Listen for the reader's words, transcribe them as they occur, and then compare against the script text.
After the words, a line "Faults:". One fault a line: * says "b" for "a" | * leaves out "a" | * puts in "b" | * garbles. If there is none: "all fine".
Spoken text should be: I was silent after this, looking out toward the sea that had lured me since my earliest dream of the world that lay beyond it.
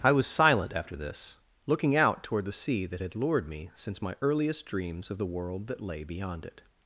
I was silent after this, looking out toward the sea that had lured me since my earliest dreams of the world that lay beyond it.
Faults:
* says "dreams" for "dream"